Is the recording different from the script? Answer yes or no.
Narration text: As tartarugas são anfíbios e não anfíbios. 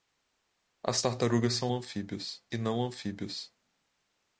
no